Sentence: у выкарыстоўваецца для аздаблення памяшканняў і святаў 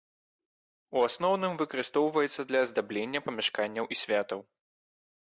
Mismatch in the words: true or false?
true